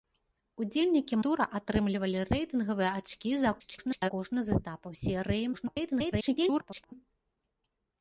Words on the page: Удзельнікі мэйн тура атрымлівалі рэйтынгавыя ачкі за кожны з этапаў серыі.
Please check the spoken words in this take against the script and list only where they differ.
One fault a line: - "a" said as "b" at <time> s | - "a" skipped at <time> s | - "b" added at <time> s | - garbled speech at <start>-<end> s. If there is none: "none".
- "мэйн" skipped at 1.2 s
- garbled speech at 3.6-4.1 s
- garbled speech at 5.5-6.9 s